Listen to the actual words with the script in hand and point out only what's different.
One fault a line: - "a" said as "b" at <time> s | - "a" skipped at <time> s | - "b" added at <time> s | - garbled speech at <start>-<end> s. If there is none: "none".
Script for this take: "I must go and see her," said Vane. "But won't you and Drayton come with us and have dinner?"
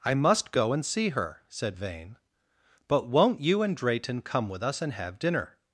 none